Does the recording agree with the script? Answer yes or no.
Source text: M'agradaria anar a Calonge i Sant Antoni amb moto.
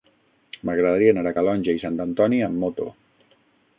yes